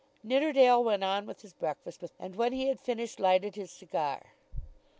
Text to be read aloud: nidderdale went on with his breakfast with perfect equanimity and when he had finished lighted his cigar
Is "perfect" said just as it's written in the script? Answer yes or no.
no